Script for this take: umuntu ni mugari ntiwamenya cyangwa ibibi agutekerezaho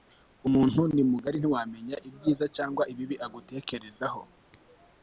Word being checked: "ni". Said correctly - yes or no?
yes